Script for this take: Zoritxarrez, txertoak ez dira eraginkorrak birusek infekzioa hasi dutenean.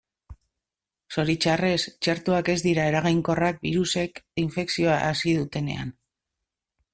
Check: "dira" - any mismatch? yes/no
no